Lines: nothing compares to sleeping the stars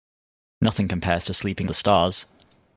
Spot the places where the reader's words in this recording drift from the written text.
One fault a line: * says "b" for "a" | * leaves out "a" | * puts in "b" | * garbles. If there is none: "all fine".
all fine